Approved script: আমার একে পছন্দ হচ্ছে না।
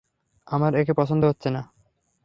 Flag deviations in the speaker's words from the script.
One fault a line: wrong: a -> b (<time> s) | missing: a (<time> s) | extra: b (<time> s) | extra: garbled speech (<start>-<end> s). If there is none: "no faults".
no faults